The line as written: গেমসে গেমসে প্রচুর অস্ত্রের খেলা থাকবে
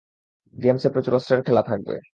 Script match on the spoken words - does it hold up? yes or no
no